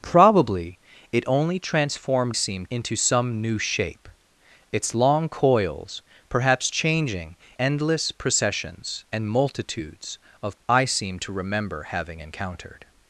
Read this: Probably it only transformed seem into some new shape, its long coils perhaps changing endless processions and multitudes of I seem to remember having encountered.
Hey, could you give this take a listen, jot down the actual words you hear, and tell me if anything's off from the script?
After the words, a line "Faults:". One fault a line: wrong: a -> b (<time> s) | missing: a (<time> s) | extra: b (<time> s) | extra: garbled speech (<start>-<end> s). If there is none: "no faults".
Probably it only transformed seem into some new shape, its long coils perhaps changing endless processions and multitudes of I seem to remember having encountered.
Faults:
no faults